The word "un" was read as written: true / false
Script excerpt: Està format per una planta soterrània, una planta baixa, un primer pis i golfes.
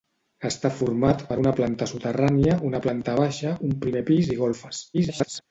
true